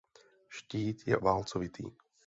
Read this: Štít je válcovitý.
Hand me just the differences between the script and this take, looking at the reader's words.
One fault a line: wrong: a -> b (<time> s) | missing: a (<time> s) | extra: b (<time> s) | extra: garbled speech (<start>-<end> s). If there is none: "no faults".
no faults